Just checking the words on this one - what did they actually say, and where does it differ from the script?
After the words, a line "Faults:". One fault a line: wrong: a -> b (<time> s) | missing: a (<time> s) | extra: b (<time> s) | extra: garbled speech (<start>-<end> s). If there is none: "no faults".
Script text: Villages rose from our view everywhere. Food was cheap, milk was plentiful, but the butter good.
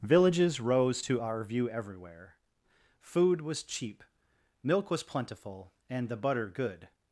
Villages rose to our view everywhere. Food was cheap, milk was plentiful, and the butter good.
Faults:
wrong: from -> to (1.0 s)
wrong: but -> and (5.9 s)